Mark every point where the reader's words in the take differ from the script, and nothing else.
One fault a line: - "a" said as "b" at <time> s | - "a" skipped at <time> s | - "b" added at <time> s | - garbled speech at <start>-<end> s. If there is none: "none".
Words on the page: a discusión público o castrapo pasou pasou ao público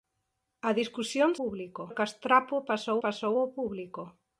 none